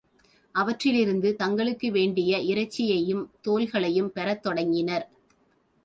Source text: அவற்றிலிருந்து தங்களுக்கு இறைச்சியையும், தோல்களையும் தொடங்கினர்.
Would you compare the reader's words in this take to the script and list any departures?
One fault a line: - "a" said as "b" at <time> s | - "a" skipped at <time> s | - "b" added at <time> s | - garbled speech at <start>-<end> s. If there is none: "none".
- "வேண்டிய" added at 1.9 s
- "பெறத்" added at 4.1 s